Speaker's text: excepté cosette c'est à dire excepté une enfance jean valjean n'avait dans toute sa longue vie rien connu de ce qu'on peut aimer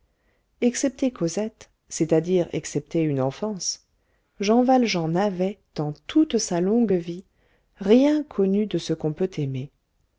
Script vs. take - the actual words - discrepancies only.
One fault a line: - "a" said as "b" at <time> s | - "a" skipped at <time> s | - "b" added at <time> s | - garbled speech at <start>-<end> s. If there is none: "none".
none